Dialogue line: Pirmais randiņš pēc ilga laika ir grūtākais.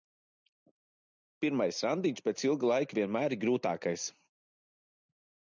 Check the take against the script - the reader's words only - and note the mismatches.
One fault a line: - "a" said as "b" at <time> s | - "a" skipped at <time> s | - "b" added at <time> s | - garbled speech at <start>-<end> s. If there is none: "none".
- "vienmēr" added at 3.0 s